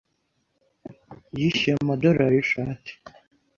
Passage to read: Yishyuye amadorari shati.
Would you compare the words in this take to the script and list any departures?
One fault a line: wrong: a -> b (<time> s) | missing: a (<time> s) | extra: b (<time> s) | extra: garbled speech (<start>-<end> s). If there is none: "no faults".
no faults